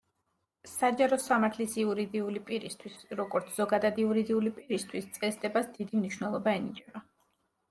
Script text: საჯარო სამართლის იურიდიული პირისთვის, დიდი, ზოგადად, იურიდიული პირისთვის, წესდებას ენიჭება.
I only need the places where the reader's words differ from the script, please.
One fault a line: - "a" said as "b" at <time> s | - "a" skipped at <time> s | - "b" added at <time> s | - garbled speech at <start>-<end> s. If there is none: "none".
- "დიდი" said as "როგორც" at 3.2 s
- "დიდი მნიშვნელობა" added at 5.8 s